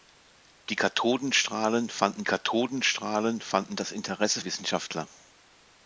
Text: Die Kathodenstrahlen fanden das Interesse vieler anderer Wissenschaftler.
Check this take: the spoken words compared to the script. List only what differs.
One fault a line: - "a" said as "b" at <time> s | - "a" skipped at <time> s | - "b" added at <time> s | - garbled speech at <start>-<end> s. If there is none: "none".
- "Kathodenstrahlen fanden" added at 2.2 s
- "vieler anderer" skipped at 4.4 s